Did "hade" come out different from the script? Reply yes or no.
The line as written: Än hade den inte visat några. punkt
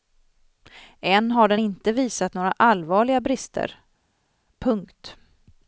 yes